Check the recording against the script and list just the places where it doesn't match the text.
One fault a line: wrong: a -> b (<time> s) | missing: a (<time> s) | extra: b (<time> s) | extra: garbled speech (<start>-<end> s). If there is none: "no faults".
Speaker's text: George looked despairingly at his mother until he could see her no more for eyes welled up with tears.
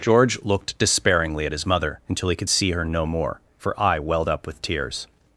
wrong: eyes -> eye (3.8 s)